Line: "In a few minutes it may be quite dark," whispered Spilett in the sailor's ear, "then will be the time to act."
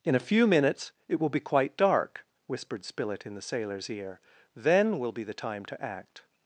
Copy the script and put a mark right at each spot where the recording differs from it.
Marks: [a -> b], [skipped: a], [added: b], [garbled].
"In a few minutes it [may -> will] be quite dark," whispered Spilett in the sailor's ear, "then will be the time to act."